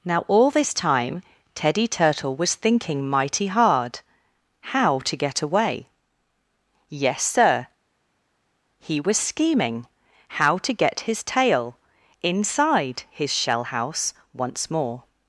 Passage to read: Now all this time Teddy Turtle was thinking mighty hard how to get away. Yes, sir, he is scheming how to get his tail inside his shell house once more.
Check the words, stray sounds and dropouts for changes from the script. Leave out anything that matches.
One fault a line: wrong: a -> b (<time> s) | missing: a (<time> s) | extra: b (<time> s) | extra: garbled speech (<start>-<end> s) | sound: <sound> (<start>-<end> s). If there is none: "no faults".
wrong: is -> was (9.0 s)